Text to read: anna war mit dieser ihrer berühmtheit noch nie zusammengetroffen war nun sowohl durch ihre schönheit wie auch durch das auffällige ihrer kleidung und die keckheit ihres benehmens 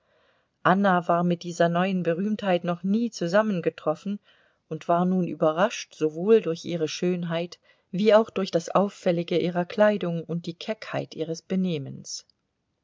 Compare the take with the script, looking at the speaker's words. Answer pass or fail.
fail